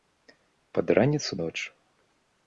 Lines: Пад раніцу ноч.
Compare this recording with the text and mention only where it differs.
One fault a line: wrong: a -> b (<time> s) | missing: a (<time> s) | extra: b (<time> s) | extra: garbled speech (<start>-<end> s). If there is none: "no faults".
no faults